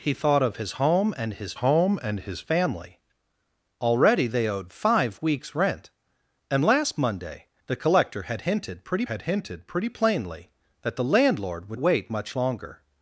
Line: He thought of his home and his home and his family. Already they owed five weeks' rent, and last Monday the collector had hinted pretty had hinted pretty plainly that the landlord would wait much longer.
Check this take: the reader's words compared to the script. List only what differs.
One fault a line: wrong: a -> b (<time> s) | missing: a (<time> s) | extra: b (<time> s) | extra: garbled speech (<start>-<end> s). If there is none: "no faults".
no faults